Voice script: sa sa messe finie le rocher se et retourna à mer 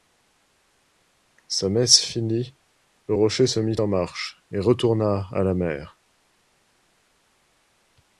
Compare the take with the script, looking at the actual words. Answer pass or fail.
fail